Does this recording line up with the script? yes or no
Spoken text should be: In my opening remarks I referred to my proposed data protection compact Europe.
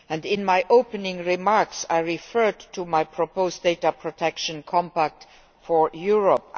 no